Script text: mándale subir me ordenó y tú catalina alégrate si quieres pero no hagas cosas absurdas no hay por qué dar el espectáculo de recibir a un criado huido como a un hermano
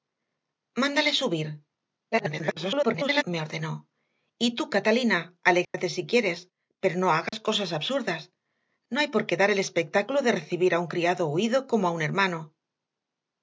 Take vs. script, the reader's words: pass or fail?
fail